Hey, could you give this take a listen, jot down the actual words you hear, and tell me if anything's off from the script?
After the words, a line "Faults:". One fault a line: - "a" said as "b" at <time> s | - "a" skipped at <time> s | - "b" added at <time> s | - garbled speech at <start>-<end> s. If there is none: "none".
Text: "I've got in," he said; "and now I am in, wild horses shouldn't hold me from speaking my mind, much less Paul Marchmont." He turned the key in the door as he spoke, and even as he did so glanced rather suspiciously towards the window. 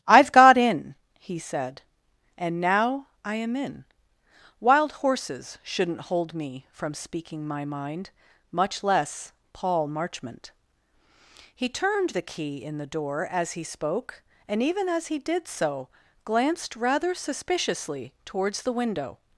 "I've got in," he said; "and now I am in, wild horses shouldn't hold me from speaking my mind, much less Paul Marchmont." He turned the key in the door as he spoke, and even as he did so glanced rather suspiciously towards the window.
Faults:
none